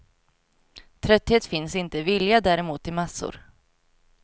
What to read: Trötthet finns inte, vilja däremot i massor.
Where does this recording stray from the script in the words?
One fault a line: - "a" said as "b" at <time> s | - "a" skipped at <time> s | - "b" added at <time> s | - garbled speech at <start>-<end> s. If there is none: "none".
none